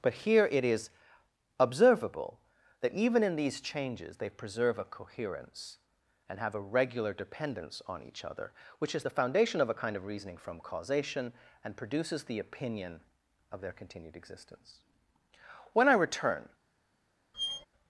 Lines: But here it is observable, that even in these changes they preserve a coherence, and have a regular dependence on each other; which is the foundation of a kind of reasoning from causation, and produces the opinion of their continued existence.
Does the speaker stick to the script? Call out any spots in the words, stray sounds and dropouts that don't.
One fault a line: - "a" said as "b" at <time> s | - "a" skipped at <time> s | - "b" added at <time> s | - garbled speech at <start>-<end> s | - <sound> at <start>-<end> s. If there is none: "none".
- "When I return" added at 15.7 s
- squeak at 17.3-17.7 s